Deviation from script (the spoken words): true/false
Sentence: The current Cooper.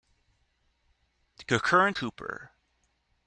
false